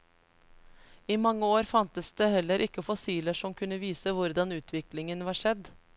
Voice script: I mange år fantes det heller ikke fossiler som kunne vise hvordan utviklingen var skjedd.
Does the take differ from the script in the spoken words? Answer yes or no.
no